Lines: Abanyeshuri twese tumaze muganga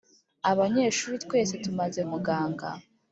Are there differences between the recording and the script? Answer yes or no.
no